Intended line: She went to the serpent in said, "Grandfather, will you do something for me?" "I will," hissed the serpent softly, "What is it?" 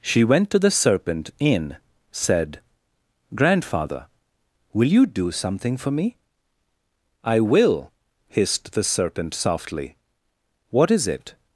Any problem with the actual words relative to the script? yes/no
no